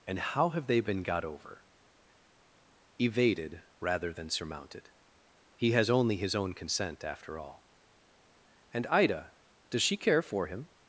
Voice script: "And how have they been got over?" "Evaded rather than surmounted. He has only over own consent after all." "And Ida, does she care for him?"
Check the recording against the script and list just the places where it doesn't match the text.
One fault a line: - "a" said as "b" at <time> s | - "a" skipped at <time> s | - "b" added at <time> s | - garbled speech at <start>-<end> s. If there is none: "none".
- "over" said as "his" at 6.2 s